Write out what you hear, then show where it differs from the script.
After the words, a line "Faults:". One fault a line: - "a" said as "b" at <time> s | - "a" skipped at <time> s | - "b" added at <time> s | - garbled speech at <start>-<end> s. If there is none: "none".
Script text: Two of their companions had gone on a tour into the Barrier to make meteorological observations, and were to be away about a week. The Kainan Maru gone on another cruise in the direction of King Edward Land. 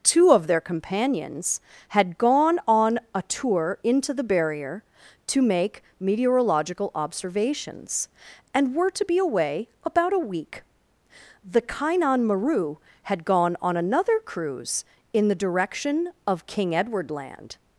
Two of their companions had gone on a tour into the Barrier to make meteorological observations, and were to be away about a week. The Kainan Maru had gone on another cruise in the direction of King Edward Land.
Faults:
- "had" added at 13.0 s